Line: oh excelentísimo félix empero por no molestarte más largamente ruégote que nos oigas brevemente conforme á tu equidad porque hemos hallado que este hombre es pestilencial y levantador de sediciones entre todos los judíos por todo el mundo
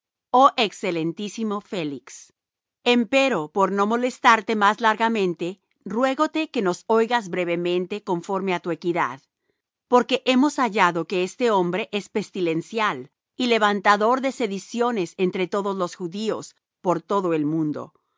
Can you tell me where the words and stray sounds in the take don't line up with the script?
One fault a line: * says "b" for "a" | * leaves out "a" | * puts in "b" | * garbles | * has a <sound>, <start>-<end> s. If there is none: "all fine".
all fine